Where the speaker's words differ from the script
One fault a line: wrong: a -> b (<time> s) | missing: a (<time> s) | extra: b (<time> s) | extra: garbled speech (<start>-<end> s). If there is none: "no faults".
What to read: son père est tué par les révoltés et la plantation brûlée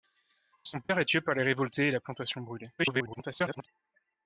extra: garbled speech (2.8-3.7 s)